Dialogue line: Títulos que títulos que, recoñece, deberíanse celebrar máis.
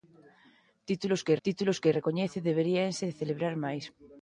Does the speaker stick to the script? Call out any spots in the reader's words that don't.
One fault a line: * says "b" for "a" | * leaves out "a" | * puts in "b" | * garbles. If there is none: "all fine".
all fine